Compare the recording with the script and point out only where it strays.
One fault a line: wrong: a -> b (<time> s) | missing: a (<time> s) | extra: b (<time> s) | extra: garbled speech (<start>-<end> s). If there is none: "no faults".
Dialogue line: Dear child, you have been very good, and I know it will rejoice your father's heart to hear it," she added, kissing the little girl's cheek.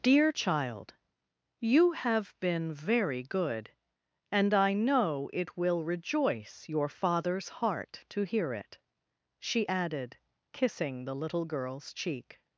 no faults